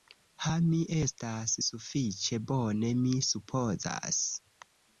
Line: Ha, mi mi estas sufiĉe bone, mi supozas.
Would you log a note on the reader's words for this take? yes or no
yes